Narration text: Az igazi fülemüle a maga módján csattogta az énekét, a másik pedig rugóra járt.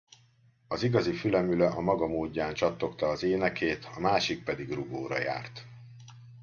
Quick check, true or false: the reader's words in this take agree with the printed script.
true